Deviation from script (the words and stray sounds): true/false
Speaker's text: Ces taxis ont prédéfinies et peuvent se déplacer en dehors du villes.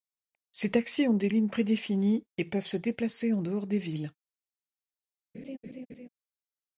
true